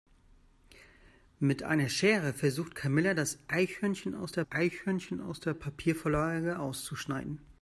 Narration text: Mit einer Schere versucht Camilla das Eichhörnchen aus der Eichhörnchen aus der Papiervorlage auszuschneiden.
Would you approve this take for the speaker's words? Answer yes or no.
yes